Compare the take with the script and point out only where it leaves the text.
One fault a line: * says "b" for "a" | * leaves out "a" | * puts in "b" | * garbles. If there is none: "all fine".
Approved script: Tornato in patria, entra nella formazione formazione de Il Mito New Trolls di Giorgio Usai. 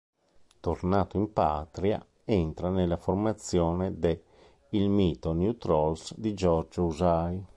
* leaves out "formazione"